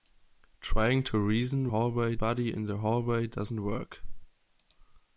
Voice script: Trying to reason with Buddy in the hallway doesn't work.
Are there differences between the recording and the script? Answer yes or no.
yes